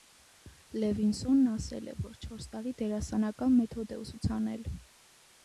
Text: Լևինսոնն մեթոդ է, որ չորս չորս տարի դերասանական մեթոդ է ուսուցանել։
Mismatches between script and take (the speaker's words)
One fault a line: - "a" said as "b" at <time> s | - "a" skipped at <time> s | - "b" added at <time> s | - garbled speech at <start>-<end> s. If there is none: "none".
- "մեթոդ" said as "ասել" at 1.5 s
- "չորս" skipped at 2.5 s